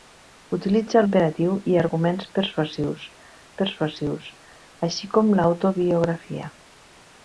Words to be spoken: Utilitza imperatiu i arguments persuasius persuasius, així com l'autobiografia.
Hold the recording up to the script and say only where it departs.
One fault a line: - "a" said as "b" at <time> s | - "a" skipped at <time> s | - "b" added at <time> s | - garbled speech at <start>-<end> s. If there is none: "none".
none